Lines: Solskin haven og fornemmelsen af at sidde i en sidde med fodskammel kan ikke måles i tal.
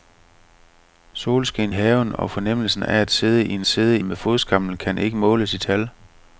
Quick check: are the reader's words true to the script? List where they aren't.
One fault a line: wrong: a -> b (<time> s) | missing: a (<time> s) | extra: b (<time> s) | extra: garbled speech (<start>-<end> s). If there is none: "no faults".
no faults